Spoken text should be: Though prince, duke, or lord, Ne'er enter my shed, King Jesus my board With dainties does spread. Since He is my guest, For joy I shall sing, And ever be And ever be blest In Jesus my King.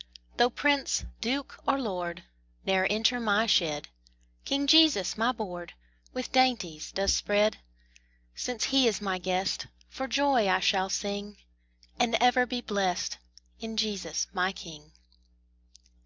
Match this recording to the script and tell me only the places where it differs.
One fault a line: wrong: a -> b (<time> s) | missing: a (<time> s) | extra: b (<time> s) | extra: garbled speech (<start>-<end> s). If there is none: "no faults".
missing: And ever be (12.6 s)